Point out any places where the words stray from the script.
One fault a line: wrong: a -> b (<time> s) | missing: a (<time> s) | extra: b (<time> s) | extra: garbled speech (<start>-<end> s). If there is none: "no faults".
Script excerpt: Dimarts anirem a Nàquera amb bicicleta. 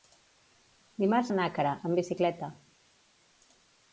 missing: anirem (1.3 s)